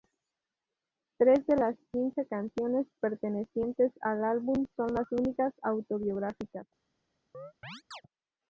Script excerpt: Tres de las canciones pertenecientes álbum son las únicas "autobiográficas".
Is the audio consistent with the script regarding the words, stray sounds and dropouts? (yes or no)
no